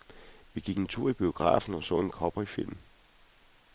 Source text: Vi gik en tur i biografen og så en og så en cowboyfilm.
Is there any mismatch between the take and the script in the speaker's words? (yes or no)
yes